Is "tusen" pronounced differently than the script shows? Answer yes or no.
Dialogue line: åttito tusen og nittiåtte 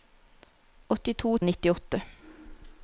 yes